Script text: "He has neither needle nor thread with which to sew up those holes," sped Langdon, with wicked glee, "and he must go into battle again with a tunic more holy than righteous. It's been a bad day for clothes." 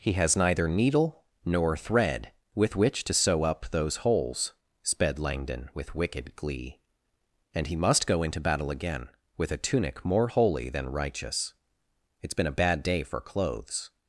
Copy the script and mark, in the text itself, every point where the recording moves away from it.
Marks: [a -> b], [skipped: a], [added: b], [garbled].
"He has neither needle nor thread with which to sew up those holes," sped Langdon, with wicked glee, "and he must go into battle again with a tunic more holy than righteous. It's been a bad day for clothes."